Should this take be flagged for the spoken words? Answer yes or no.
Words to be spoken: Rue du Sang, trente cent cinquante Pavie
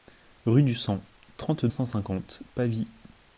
no